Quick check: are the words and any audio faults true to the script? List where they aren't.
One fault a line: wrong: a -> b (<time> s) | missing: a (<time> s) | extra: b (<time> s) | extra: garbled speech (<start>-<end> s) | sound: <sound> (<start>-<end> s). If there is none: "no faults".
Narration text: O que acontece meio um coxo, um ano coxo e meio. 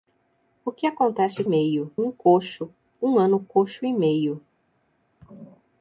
no faults